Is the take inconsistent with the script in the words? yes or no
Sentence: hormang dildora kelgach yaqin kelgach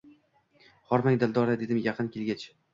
yes